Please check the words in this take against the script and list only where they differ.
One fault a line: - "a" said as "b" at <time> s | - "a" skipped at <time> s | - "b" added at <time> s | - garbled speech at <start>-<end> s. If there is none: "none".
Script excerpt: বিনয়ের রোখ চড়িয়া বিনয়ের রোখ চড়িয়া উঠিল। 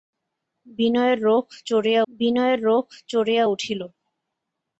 none